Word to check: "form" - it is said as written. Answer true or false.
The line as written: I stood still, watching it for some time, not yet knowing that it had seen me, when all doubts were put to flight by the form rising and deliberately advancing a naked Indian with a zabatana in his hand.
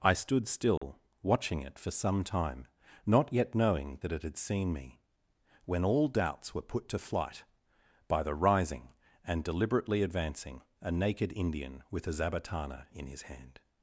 false